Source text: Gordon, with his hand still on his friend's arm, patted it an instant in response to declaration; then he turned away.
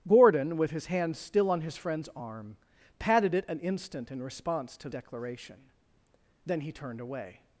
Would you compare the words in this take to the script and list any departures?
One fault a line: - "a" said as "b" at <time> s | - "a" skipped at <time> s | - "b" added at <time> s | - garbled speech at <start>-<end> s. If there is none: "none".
none